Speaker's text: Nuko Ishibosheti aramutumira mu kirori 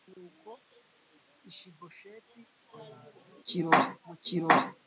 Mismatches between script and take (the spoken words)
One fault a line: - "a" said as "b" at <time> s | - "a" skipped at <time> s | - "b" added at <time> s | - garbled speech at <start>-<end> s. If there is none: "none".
- "aramutumira" said as "kirori" at 3.5 s